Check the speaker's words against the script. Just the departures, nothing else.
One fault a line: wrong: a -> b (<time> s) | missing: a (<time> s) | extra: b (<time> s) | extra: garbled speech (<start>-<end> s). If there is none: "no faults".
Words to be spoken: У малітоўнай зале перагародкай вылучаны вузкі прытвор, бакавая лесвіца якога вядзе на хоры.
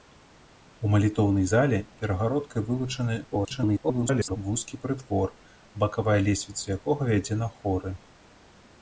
extra: garbled speech (3.2-4.4 s)